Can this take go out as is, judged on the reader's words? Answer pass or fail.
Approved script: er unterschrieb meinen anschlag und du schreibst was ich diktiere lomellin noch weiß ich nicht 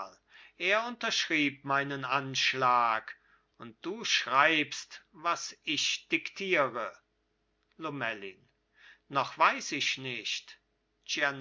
pass